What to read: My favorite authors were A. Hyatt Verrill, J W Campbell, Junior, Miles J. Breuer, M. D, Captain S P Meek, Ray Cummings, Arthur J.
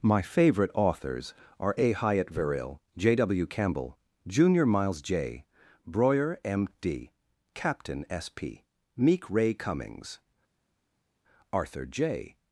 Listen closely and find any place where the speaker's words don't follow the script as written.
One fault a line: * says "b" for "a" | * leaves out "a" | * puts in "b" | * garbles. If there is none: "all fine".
* says "are" for "were"